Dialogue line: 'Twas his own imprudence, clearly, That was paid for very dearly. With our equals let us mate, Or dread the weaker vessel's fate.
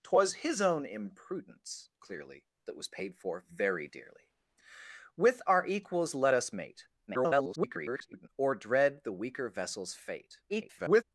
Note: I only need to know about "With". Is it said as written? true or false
true